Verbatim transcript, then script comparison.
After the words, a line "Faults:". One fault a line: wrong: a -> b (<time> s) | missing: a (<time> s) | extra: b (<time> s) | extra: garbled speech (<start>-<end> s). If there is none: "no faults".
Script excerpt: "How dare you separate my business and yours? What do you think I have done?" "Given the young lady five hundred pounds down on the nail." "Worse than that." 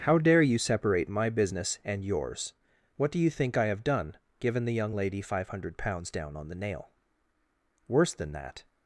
"How dare you separate my business and yours? What do you think I have done?" "Given the young lady five hundred pounds down on the nail." "Worse than that."
Faults:
no faults